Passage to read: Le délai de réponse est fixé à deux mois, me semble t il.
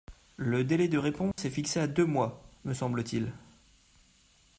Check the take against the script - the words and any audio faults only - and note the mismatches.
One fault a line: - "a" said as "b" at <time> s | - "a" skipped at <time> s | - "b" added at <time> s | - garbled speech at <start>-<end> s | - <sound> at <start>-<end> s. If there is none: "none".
- dropout at 1.3-1.4 s